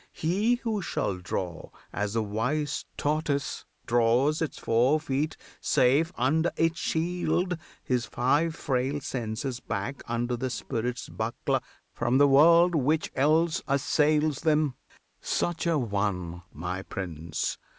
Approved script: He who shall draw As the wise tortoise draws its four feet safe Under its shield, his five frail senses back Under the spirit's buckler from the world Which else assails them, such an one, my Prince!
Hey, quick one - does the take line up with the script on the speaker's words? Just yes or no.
yes